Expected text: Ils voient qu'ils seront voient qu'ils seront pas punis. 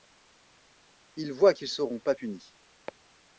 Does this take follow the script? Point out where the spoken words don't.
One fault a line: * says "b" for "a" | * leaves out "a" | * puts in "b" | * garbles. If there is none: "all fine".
* leaves out "voient qu'ils seront"